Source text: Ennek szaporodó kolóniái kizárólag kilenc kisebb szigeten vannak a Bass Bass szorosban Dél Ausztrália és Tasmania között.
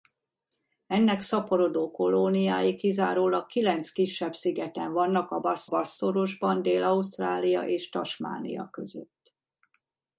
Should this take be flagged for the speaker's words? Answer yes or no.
no